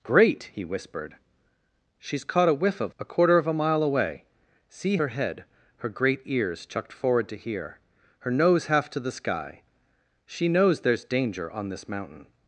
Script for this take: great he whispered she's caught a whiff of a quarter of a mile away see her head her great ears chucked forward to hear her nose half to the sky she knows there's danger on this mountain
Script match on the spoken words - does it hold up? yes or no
yes